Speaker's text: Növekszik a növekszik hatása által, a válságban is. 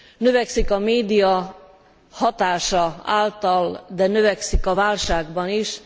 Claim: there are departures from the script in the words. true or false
true